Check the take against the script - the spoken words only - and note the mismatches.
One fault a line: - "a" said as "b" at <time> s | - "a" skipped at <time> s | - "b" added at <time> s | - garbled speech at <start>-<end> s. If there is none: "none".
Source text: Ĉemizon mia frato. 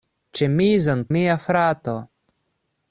none